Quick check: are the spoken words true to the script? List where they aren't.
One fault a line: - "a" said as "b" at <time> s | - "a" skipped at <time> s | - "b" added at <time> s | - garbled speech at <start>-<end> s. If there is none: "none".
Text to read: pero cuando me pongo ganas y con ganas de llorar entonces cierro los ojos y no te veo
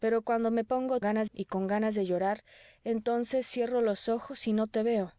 none